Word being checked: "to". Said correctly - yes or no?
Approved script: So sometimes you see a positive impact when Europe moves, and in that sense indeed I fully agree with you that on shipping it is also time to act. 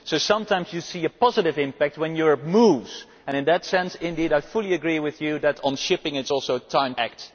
no